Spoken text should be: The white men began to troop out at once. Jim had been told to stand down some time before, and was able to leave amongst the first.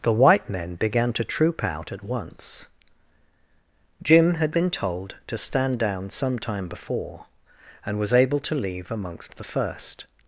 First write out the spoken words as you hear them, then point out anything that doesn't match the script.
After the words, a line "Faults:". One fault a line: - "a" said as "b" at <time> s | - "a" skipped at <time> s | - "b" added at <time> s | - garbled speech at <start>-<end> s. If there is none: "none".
The white men began to troop out at once. Jim had been told to stand down some time before, and was able to leave amongst the first.
Faults:
none